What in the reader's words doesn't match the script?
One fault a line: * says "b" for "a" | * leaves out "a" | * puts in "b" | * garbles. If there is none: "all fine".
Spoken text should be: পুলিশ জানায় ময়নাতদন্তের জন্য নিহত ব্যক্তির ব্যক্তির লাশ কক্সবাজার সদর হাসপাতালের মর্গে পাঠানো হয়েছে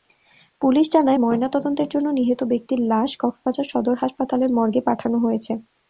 * leaves out "ব্যক্তির"